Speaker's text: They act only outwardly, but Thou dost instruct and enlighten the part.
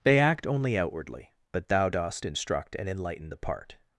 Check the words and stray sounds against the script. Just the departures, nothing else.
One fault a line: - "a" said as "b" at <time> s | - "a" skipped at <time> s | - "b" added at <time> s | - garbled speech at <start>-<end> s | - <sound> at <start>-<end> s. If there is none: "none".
none